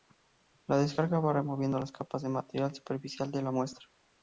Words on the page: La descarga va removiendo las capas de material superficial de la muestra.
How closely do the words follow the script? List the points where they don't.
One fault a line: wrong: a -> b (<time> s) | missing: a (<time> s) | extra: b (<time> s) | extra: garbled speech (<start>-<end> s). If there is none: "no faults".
no faults